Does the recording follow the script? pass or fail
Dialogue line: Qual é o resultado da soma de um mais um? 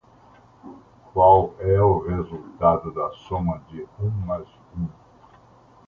pass